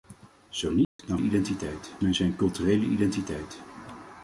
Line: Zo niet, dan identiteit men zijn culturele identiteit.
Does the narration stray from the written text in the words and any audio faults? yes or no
yes